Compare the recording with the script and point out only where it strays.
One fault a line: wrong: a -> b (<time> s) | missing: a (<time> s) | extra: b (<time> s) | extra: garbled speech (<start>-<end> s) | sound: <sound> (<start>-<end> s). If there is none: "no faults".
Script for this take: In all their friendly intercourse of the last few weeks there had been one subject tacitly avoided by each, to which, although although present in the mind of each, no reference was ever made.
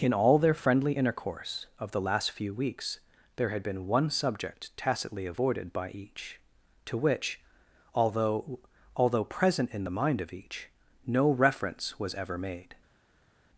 no faults